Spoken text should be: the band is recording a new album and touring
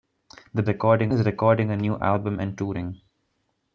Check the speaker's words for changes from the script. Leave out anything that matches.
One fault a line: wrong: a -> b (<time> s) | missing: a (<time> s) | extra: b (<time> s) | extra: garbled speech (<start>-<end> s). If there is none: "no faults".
wrong: band -> recording (0.7 s)